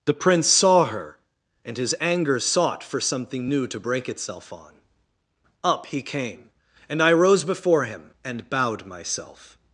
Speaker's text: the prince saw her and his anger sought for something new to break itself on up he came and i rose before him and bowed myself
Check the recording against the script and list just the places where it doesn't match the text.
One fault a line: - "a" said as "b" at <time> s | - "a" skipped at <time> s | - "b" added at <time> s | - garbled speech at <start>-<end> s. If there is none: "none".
none